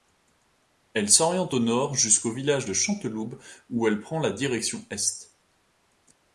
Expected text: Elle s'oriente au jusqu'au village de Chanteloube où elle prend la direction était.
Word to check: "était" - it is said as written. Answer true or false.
false